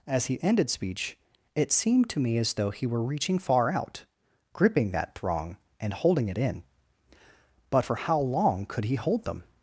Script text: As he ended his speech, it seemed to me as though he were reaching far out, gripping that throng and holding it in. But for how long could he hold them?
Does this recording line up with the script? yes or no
no